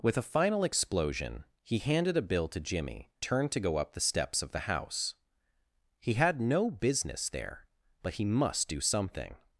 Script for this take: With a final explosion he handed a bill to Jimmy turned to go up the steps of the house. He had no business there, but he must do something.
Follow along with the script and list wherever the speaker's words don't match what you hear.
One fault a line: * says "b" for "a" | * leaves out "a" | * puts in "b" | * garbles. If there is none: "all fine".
all fine